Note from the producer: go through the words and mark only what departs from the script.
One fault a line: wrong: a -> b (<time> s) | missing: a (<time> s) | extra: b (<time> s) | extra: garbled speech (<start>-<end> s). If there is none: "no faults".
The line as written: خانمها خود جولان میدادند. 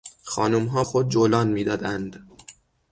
no faults